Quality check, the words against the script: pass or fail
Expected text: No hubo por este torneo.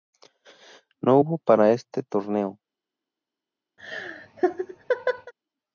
fail